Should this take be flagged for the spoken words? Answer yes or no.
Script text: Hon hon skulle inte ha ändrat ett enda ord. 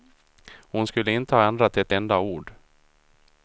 yes